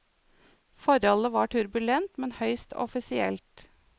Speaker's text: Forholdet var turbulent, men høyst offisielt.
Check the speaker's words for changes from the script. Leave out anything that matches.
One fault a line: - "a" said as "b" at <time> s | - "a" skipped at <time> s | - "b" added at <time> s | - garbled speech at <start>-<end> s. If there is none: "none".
none